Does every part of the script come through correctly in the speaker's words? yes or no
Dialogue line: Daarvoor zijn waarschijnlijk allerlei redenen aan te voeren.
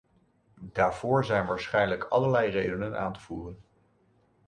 yes